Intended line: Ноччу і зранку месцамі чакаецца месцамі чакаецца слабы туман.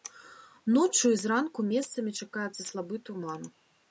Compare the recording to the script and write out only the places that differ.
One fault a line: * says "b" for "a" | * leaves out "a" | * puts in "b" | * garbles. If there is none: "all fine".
* leaves out "месцамі чакаецца"